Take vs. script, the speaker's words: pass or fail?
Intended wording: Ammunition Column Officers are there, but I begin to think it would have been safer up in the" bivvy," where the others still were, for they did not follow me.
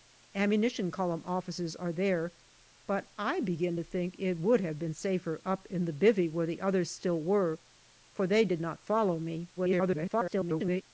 fail